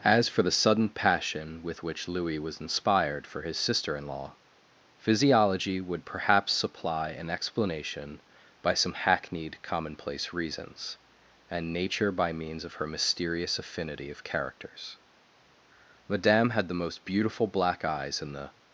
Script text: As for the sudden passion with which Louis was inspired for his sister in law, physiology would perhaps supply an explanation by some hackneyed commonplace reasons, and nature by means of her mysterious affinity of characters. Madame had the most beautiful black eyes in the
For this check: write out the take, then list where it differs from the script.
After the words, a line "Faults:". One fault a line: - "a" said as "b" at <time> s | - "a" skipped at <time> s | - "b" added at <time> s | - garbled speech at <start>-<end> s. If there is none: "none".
As for the sudden passion with which Louis was inspired for his sister in law, physiology would perhaps supply an explanation by some hackneyed commonplace reasons, and nature by means of her mysterious affinity of characters. Madame had the most beautiful black eyes in the
Faults:
none